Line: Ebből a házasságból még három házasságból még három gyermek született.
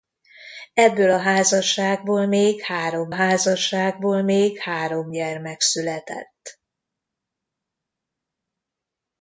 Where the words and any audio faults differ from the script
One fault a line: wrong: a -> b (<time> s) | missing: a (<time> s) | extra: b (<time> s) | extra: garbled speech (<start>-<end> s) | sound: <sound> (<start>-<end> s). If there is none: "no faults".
no faults